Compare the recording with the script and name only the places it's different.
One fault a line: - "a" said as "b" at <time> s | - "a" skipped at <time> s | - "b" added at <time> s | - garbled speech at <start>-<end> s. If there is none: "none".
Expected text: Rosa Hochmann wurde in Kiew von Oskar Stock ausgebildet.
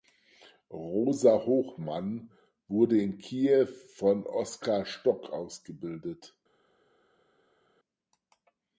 none